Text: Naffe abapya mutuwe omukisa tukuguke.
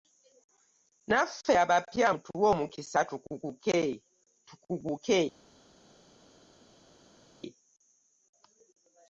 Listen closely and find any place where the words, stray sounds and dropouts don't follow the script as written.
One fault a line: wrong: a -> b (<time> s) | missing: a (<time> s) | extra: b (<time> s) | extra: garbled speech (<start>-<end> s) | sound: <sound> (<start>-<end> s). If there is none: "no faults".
no faults